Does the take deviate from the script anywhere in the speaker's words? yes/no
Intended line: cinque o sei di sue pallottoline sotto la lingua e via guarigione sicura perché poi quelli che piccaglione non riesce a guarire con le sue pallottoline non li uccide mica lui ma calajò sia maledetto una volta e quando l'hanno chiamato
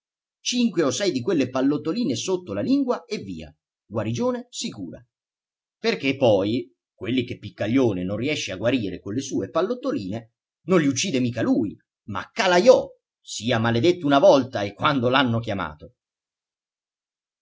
yes